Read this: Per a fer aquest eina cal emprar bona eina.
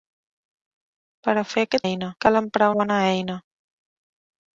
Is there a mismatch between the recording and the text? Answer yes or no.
no